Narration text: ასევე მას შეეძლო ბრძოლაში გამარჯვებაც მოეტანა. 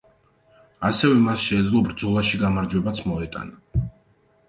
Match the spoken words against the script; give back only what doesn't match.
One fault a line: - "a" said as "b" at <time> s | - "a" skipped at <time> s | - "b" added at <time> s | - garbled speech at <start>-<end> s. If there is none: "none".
none